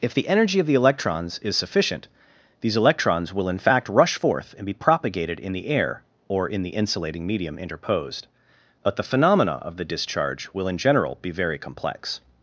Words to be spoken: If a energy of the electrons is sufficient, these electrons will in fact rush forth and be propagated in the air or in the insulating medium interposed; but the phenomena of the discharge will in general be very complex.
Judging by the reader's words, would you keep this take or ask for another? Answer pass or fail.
fail